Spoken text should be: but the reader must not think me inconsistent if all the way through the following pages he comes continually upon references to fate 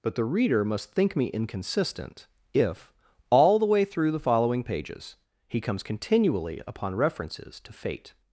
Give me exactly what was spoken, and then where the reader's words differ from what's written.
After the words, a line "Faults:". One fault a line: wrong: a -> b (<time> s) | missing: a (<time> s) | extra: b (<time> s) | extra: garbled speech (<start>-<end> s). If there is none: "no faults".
but the reader must think me inconsistent if all the way through the following pages he comes continually upon references to fate
Faults:
missing: not (0.9 s)